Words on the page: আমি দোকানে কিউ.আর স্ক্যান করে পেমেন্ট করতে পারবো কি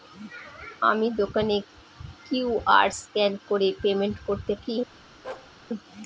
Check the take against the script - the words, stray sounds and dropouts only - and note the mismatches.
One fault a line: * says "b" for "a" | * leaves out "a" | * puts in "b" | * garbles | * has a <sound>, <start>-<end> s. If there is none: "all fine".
* leaves out "পারবো"
* has a bark, 5.2-5.5 s